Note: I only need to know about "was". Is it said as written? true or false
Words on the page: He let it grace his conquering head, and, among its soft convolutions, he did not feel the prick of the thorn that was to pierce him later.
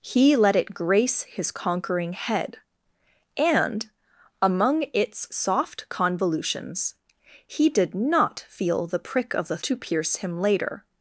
false